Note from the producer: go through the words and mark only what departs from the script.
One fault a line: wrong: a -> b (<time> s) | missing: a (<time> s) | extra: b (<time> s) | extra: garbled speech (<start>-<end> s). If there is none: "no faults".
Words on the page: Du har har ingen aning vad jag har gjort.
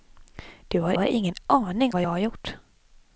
no faults